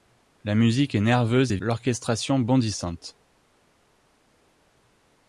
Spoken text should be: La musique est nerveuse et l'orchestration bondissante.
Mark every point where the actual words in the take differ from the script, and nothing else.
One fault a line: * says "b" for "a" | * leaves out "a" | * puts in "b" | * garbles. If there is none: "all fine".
all fine